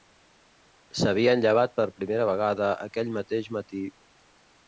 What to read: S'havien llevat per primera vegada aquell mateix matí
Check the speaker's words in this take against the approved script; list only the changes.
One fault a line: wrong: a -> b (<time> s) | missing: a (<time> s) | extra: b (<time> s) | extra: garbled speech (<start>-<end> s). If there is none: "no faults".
no faults